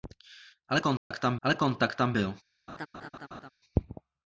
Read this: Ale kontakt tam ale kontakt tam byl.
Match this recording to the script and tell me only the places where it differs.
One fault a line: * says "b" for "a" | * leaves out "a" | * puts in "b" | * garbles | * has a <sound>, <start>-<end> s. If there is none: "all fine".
* has a dropout, 1.0-1.1 s
* has a laugh, 2.7-3.5 s